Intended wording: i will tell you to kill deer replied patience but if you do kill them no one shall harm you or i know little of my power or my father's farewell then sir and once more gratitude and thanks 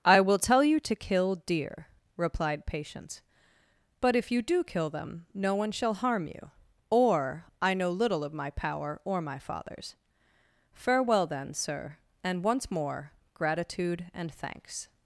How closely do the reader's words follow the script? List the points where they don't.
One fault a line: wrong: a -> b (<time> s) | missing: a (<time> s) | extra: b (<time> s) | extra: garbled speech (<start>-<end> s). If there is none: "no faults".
no faults